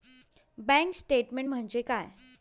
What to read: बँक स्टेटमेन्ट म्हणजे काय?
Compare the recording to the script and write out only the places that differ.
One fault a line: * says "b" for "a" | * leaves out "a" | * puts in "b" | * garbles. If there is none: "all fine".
all fine